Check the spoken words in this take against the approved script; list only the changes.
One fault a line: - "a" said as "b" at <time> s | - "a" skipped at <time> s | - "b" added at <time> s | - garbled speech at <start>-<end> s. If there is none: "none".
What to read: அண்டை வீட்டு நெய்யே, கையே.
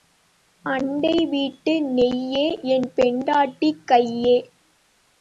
- "என் பெண்டாட்டி" added at 2.6 s